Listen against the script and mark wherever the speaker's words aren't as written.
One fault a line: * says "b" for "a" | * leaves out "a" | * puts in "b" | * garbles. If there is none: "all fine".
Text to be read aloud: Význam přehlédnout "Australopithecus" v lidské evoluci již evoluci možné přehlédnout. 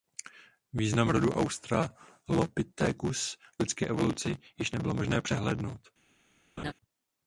* says "rodu" for "přehlédnout"
* says "nebylo" for "evoluci"